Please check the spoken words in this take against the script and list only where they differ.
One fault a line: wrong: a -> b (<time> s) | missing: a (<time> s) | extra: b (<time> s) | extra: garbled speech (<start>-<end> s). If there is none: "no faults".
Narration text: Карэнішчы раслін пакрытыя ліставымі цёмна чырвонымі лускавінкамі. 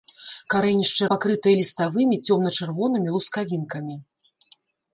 missing: раслін (1.0 s)